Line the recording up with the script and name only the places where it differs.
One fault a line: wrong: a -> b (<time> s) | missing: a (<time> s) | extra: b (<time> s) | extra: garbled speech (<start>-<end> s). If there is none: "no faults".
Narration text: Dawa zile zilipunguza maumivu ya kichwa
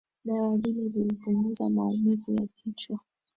no faults